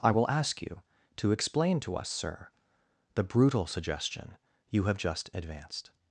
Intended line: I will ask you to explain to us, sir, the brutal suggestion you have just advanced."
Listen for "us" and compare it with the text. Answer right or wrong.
right